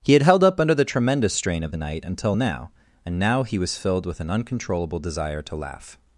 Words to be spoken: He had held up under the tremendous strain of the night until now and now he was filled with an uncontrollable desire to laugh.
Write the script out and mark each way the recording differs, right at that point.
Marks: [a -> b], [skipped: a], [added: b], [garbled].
He had held up under the tremendous strain of the night until now and now he was filled with an uncontrollable desire to laugh.